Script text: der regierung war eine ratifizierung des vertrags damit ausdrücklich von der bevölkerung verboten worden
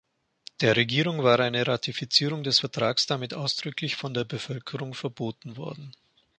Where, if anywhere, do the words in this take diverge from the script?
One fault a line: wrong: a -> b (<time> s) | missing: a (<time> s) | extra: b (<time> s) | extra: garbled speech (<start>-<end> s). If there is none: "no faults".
no faults